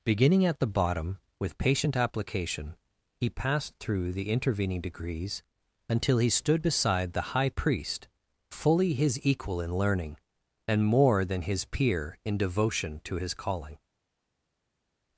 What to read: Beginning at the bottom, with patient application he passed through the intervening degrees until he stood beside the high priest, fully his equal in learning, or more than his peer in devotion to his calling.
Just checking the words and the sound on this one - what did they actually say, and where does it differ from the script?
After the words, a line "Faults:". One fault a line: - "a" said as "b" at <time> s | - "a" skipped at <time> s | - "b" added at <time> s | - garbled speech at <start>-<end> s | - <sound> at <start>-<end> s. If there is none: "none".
Beginning at the bottom, with patient application he passed through the intervening degrees until he stood beside the high priest, fully his equal in learning, and more than his peer in devotion to his calling.
Faults:
- "or" said as "and" at 10.7 s